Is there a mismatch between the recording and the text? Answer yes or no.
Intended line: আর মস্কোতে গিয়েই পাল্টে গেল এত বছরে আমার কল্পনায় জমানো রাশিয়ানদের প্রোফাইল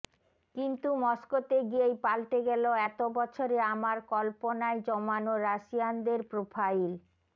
yes